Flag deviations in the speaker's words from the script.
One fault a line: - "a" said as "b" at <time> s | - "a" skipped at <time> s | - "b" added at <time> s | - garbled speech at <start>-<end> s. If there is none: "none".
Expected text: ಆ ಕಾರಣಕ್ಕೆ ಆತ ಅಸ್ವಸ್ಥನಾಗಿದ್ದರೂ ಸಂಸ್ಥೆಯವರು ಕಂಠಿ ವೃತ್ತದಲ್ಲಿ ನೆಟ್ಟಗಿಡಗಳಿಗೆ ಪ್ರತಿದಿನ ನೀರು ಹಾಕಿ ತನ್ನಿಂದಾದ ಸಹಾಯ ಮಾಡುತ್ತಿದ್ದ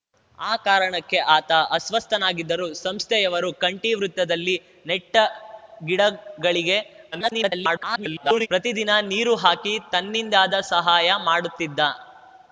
- garbled speech at 7.1-8.5 s